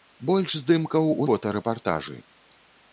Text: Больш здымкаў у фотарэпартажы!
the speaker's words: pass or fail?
pass